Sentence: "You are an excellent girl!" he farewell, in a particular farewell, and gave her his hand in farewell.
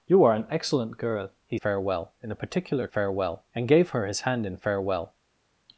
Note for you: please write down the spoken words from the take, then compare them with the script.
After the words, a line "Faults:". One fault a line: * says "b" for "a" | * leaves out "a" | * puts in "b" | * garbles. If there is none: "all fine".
"You are an excellent girl!" he farewell, in a particular farewell, and gave her his hand in farewell.
Faults:
all fine